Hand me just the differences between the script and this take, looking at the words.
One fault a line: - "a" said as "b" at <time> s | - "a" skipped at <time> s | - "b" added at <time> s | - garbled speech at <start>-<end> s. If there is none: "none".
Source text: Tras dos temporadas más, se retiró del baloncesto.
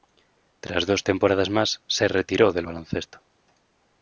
none